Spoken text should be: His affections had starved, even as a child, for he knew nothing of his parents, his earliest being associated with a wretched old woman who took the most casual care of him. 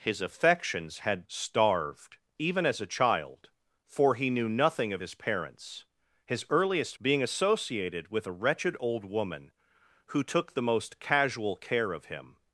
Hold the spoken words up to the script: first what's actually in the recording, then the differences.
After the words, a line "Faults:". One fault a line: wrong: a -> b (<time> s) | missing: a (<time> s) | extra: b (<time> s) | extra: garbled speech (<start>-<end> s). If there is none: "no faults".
His affections had starved, even as a child, for he knew nothing of his parents, his earliest being associated with a wretched old woman who took the most casual care of him.
Faults:
no faults